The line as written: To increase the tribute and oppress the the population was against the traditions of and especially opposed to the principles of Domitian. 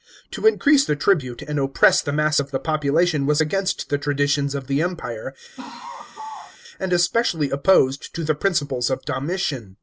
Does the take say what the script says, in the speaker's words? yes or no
no